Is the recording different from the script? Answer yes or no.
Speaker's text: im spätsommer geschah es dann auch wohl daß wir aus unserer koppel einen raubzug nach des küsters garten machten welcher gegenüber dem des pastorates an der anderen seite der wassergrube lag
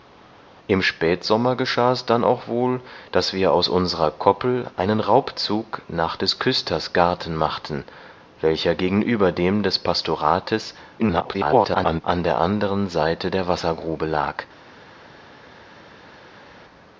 yes